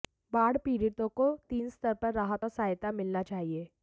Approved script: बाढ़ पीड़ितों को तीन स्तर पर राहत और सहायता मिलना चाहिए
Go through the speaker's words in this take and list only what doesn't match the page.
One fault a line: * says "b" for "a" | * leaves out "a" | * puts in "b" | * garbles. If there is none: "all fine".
all fine